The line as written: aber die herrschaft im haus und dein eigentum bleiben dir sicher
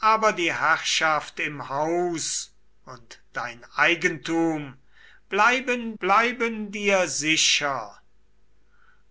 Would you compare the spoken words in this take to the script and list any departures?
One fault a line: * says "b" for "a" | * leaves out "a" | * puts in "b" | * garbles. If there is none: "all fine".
* puts in "bleiben"